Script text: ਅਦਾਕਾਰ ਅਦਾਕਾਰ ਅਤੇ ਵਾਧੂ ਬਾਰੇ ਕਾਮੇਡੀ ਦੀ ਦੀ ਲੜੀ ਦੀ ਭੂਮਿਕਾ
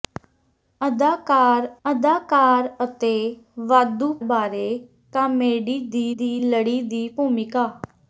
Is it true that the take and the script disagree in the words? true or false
false